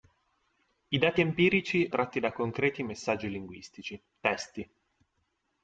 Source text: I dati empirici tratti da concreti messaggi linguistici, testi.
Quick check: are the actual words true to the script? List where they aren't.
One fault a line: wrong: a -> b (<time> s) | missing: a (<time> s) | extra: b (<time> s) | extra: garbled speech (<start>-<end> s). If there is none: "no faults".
no faults